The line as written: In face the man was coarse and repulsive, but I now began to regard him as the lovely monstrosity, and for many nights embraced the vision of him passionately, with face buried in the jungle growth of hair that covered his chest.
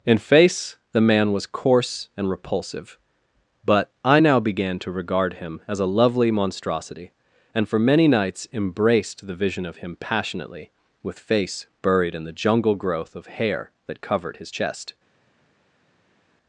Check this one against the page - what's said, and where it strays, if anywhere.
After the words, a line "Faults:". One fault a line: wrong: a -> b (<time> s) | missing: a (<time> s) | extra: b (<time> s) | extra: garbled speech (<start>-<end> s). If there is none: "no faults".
In face the man was coarse and repulsive, but I now began to regard him as a lovely monstrosity, and for many nights embraced the vision of him passionately, with face buried in the jungle growth of hair that covered his chest.
Faults:
wrong: the -> a (5.8 s)